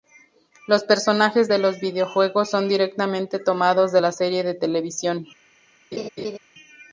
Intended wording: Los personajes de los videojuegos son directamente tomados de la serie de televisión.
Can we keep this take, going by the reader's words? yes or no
yes